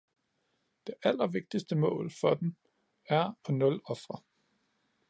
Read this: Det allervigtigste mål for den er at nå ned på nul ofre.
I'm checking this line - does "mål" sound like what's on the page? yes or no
yes